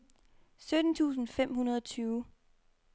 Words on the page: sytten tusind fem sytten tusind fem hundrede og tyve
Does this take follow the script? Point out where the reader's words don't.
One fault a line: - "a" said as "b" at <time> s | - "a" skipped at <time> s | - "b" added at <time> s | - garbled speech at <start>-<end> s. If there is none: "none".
- "sytten tusind fem" skipped at 1.5 s